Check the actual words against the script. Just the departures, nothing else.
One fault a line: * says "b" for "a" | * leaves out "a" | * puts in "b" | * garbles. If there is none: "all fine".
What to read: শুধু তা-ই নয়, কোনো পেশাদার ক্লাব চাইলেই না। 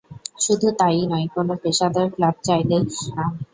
all fine